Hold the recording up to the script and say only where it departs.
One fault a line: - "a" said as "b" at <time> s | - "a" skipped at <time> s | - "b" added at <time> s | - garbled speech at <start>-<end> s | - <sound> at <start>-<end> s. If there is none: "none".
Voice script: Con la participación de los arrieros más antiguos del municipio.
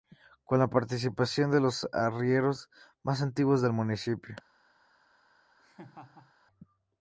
- laugh at 5.6-6.3 s